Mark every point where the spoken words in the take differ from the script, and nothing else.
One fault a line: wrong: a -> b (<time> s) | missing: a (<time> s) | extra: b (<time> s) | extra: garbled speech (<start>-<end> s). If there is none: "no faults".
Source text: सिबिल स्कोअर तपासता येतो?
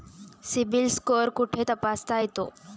extra: कुठे (1.3 s)